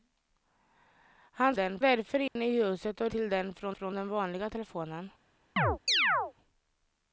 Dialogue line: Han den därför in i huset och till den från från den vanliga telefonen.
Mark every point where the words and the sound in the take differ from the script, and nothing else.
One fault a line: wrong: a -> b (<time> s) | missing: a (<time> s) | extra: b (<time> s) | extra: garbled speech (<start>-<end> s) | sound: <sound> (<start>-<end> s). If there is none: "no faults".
sound: dropout (2.3-2.4 s)
sound: chirp (5.6-6.3 s)